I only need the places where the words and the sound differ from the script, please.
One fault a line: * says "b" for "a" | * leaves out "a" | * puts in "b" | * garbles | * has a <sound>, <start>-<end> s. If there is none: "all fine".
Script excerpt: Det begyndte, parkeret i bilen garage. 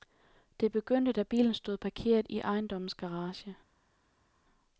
* puts in "da bilen stod"
* says "ejendommens" for "bilen"